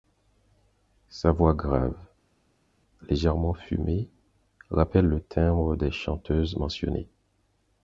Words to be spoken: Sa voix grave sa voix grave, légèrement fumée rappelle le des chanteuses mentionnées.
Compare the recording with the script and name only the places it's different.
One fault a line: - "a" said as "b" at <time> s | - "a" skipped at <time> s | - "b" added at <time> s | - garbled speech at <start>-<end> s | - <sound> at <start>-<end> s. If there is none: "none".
- "sa voix grave" skipped at 1.9 s
- "timbre" added at 5.3 s